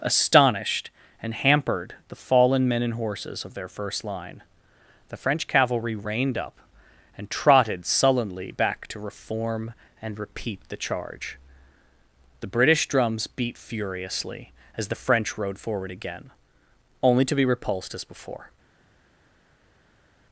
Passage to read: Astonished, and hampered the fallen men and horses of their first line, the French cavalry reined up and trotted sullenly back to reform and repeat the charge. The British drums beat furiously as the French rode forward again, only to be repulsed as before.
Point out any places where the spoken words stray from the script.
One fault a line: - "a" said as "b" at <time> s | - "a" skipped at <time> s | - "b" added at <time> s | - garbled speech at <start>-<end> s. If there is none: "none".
none